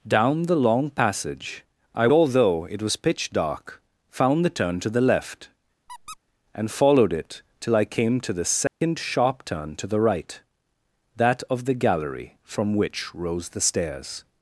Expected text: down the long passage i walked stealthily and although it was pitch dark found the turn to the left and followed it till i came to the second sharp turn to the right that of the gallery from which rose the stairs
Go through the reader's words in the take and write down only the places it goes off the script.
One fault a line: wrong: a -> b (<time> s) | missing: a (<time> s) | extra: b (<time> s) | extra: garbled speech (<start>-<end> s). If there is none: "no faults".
missing: walked stealthily and (2.1 s)